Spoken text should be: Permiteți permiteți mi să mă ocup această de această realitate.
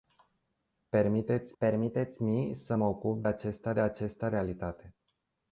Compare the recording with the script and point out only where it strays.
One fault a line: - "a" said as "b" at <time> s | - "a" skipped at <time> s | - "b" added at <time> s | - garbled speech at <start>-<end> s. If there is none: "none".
none